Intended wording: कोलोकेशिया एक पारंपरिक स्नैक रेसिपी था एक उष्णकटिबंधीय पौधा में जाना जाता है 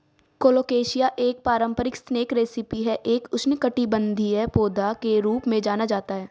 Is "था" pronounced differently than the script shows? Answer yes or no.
yes